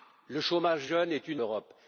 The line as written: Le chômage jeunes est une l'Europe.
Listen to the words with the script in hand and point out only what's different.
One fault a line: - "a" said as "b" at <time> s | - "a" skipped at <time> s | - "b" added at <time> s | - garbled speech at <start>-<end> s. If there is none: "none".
none